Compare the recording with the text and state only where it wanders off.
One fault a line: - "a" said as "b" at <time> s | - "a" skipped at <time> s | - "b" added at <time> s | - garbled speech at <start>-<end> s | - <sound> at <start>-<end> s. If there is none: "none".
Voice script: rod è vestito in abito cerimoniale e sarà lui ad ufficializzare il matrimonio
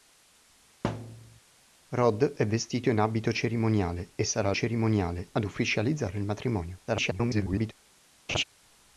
- thud at 0.8-1.4 s
- "lui" said as "cerimoniale" at 4.5 s
- garbled speech at 6.9-7.7 s
- laugh at 8.3-8.4 s